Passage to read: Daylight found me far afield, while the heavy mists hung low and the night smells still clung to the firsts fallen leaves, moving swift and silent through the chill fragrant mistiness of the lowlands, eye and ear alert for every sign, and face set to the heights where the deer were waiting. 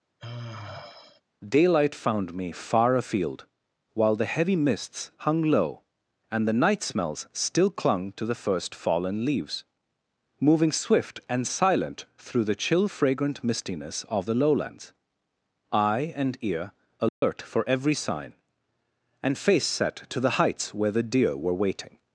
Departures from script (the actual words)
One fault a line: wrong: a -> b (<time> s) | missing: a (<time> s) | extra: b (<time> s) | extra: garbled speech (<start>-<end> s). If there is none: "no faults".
wrong: firsts -> first (8.3 s)